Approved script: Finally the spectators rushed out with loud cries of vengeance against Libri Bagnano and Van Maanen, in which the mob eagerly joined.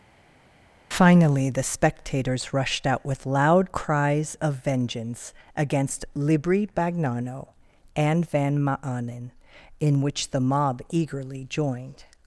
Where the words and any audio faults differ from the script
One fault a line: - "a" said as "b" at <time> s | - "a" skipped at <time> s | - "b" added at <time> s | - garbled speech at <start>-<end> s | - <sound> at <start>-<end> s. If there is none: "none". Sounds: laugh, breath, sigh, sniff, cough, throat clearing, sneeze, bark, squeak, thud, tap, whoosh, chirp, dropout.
none